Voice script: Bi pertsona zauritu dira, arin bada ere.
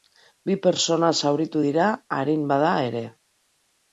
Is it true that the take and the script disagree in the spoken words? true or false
false